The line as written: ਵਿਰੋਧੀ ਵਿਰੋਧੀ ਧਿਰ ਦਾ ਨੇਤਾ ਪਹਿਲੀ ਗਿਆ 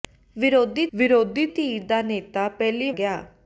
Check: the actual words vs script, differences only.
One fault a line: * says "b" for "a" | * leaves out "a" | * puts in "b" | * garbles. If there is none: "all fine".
all fine